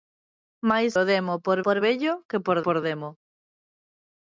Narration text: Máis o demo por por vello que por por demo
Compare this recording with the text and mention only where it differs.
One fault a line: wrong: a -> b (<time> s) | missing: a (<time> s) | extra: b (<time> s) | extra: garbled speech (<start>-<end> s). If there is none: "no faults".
no faults